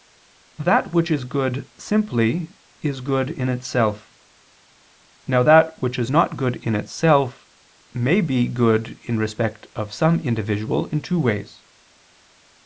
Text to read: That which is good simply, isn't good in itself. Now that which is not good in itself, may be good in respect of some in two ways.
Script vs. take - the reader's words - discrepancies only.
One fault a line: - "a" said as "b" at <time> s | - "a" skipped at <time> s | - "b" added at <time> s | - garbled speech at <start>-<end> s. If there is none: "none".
- "isn't" said as "is" at 2.8 s
- "individual" added at 10.2 s